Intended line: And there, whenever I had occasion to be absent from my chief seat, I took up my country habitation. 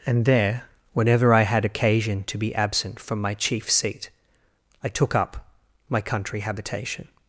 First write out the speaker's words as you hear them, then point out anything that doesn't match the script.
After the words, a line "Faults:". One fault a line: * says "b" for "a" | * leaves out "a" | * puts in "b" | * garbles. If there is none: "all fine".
And there, whenever I had occasion to be absent from my chief seat, I took up my country habitation.
Faults:
all fine